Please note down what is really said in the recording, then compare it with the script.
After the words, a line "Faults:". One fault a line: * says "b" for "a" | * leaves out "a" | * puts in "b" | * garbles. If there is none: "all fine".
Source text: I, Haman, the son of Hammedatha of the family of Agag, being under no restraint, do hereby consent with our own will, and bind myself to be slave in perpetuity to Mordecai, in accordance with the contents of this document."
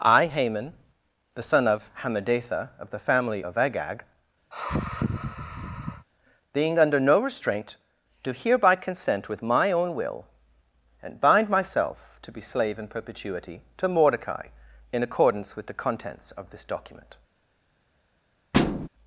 I, Haman, the son of Hammedatha of the family of Agag, being under no restraint, do hereby consent with my own will, and bind myself to be slave in perpetuity to Mordecai, in accordance with the contents of this document."
Faults:
* says "my" for "our"